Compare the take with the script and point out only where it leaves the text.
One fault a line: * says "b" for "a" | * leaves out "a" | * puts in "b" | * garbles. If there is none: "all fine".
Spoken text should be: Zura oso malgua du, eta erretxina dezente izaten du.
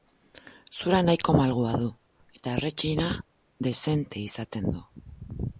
* says "nahiko" for "oso"